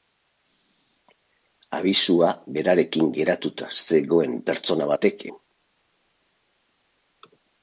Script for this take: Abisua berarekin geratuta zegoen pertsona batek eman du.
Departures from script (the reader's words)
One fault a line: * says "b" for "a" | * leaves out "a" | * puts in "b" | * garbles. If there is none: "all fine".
* leaves out "eman"